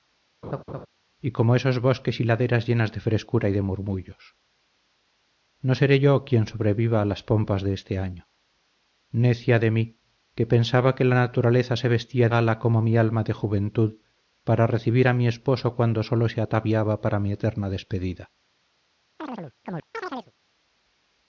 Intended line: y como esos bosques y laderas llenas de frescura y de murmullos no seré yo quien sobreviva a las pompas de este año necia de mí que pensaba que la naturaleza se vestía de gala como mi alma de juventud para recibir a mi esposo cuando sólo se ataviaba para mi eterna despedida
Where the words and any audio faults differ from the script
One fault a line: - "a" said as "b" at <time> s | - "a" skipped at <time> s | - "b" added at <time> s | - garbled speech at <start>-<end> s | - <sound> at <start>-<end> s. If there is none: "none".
- laugh at 0.4-0.9 s
- "de" skipped at 12.3 s
- chirp at 19.2-20.3 s